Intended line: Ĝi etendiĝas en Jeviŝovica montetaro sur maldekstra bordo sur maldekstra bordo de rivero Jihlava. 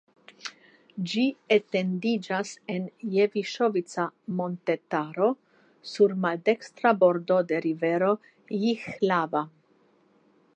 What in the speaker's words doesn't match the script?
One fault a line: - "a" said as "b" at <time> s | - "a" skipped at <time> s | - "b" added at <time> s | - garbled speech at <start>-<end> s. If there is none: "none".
- "sur maldekstra bordo" skipped at 7.4 s